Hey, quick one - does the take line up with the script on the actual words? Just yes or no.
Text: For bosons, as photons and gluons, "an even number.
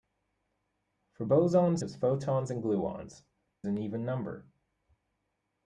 yes